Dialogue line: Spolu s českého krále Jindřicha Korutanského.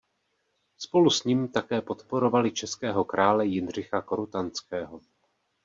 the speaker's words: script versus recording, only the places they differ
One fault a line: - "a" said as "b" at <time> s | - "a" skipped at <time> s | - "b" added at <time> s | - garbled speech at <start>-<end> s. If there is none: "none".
- "ním také podporovali" added at 1.2 s